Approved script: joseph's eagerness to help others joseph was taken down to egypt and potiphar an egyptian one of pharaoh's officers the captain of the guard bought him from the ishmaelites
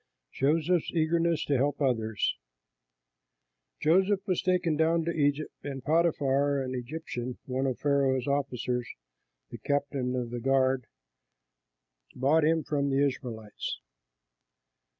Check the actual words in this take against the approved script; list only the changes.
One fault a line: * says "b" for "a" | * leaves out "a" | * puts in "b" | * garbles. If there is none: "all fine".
all fine